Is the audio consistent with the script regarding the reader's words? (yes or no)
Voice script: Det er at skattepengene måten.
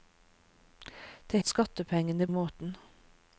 yes